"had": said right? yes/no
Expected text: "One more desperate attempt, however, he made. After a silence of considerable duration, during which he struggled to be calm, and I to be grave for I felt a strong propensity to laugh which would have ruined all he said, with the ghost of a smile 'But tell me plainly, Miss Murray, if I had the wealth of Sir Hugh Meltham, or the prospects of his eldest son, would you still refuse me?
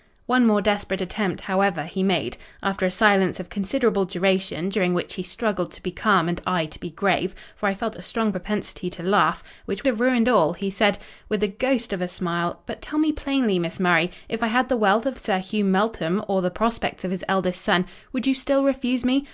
yes